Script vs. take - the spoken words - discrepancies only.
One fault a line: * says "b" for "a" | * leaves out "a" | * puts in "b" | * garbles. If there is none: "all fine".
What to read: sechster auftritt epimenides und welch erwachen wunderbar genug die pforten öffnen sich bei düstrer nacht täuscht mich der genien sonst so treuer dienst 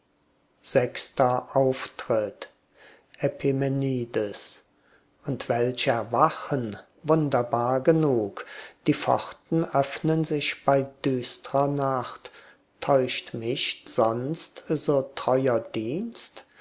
* leaves out "der genien"